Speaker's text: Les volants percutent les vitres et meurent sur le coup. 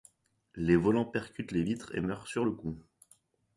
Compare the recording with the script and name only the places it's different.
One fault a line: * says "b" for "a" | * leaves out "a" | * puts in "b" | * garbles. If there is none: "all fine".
all fine